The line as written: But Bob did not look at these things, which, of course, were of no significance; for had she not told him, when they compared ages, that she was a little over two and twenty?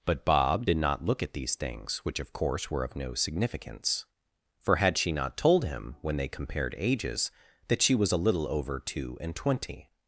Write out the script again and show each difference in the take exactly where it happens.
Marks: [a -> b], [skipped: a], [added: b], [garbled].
But Bob did not look at these things, which, of course, were of no significance; for had she not told him, when they compared ages, that she was a little over two and twenty?